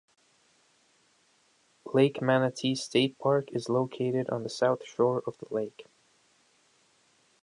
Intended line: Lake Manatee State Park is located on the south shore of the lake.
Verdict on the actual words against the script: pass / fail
pass